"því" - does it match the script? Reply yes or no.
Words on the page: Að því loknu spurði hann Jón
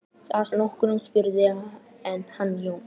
no